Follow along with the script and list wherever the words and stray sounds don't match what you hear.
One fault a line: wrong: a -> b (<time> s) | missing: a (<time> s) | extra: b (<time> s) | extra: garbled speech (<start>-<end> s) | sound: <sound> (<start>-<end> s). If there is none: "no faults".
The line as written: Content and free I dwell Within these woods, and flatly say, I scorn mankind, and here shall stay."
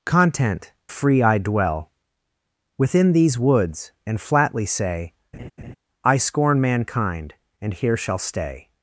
missing: and (0.7 s)
sound: laugh (5.3-5.8 s)